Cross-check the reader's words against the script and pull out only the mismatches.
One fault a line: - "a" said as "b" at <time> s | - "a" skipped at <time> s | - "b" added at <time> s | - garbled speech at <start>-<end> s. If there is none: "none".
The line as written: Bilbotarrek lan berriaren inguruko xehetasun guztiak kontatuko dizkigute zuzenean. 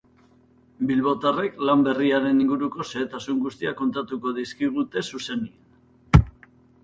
none